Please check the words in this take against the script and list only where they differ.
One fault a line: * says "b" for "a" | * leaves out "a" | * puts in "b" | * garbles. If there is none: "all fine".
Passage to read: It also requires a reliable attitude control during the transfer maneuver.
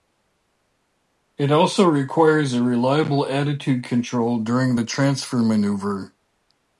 all fine